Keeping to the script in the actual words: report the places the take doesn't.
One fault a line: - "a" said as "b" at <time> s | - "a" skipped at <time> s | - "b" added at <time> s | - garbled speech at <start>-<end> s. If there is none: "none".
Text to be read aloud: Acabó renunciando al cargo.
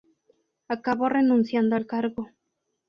none